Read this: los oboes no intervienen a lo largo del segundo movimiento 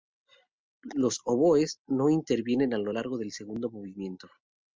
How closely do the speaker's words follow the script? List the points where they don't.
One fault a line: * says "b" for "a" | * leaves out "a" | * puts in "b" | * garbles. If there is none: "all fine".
all fine